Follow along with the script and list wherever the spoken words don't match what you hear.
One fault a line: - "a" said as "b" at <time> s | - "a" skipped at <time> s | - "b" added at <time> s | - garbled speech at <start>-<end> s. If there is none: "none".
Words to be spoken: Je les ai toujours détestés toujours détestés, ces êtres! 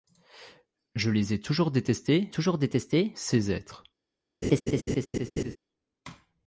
none